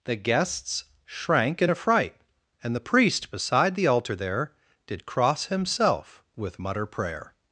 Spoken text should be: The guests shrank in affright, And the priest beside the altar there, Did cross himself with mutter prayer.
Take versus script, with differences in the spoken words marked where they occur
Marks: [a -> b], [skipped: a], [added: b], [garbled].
The guests shrank in affright, And the priest beside the altar there, Did cross himself with mutter prayer.